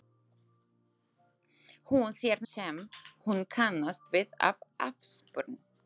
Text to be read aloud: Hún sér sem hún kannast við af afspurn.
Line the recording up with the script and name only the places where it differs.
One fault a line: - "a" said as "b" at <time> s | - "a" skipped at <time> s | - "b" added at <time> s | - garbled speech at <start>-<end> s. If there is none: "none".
none